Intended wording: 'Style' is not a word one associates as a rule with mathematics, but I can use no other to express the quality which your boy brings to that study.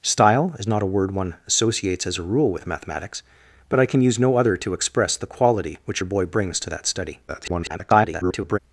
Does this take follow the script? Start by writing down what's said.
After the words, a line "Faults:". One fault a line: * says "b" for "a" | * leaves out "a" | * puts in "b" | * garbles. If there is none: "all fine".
'Style' is not a word one associates as a rule with mathematics, but I can use no other to express the quality which your boy brings to that study. [garbled]
Faults:
* garbles